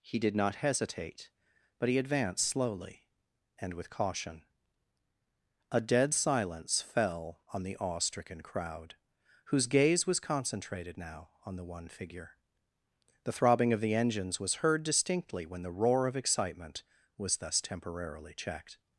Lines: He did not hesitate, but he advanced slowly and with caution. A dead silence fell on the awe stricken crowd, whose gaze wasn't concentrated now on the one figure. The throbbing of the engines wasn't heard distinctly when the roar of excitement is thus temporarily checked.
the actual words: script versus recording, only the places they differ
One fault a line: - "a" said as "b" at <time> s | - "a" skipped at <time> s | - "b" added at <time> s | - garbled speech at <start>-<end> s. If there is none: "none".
- "wasn't" said as "was" at 10.0 s
- "wasn't" said as "was" at 14.4 s
- "is" said as "was" at 17.2 s